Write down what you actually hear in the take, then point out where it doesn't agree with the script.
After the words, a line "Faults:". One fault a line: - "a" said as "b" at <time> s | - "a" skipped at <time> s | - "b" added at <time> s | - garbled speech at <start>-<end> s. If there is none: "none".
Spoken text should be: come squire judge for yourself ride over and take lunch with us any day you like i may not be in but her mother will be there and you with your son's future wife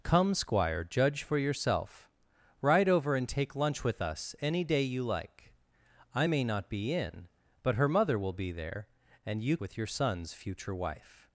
come squire judge for yourself ride over and take lunch with us any day you like i may not be in but her mother will be there and you with your son's future wife
Faults:
none